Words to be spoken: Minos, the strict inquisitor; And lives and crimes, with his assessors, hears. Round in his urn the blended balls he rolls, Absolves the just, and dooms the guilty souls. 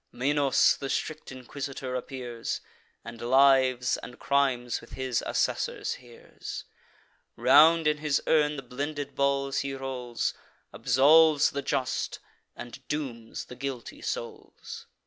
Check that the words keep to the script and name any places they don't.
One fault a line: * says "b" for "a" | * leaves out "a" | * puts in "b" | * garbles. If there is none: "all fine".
* puts in "appears"